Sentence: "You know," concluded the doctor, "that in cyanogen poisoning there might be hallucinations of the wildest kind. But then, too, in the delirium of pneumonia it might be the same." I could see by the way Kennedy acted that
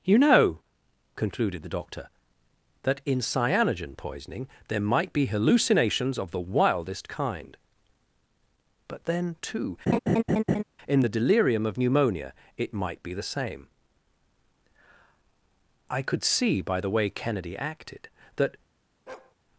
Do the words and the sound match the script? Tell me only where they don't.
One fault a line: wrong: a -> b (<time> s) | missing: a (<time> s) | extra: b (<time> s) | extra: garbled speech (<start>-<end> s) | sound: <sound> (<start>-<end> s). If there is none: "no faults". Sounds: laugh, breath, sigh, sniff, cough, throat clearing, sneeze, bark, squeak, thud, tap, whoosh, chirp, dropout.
sound: laugh (9.9-10.6 s)
sound: bark (19.1-19.4 s)